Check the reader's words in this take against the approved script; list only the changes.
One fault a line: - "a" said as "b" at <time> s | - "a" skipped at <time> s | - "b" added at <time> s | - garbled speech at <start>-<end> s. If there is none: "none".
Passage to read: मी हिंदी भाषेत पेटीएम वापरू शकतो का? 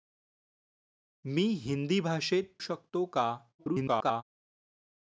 - "पेटीएम वापरू" skipped at 2.6 s
- garbled speech at 3.6-4.2 s